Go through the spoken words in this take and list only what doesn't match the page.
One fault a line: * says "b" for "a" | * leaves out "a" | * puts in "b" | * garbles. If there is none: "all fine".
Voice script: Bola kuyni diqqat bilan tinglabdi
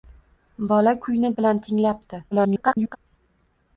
* leaves out "diqqat"
* garbles